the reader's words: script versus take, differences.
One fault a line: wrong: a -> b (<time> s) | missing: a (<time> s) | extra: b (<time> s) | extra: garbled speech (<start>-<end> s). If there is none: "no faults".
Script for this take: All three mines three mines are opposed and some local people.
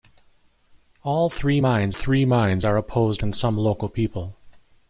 no faults